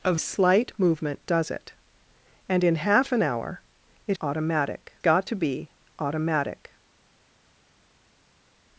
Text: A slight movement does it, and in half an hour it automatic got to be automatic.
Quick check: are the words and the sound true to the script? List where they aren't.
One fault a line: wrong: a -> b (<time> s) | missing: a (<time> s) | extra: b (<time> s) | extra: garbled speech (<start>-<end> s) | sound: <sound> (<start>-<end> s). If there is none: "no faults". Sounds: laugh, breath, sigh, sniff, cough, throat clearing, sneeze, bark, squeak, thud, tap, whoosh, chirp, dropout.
no faults